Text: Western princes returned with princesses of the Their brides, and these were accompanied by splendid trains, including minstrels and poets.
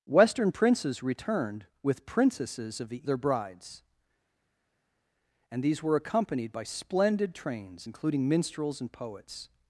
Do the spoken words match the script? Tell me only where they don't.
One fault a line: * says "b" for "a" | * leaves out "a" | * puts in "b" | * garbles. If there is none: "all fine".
all fine